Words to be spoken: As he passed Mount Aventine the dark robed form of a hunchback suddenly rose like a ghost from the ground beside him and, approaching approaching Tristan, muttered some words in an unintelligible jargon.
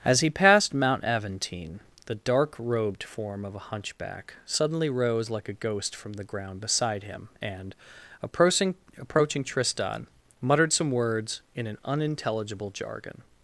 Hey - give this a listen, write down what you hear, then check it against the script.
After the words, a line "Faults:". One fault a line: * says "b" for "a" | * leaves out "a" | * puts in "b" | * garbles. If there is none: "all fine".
As he passed Mount Aventine the dark robed form of a hunchback suddenly rose like a ghost from the ground beside him and, approaching approaching Tristan, muttered some words in an unintelligible jargon.
Faults:
all fine